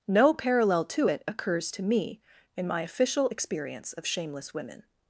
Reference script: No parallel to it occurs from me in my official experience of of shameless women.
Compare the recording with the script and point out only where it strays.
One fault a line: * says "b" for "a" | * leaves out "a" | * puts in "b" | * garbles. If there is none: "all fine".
* says "to" for "from"
* leaves out "of"